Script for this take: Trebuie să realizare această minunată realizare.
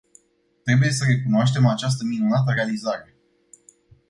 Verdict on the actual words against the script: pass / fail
fail